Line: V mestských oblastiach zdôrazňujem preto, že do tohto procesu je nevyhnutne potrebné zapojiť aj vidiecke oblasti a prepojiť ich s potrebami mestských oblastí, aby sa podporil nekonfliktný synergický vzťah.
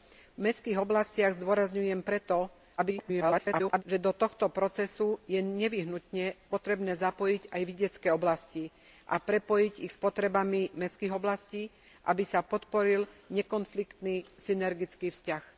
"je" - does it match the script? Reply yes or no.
yes